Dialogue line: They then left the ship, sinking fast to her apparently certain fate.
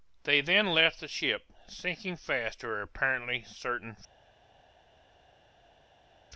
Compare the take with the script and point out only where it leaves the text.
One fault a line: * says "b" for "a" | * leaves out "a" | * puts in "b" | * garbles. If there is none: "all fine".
all fine